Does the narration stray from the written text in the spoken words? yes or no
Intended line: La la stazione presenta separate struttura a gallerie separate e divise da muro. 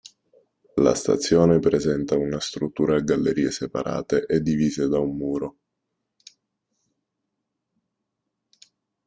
yes